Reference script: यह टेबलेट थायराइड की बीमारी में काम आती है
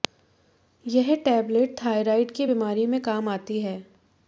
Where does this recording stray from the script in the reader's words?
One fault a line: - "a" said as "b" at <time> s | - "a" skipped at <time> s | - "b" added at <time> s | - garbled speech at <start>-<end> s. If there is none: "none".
none